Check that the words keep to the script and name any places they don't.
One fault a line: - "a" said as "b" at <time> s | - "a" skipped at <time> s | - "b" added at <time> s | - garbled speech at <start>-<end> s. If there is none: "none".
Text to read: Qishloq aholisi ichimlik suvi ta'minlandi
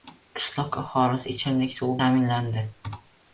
none